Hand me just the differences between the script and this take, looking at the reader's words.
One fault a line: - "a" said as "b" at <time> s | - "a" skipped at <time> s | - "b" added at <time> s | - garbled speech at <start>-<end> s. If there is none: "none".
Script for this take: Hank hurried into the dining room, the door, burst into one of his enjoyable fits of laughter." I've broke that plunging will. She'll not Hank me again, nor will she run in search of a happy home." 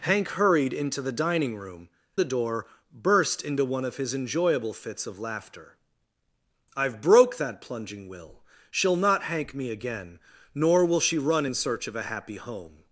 none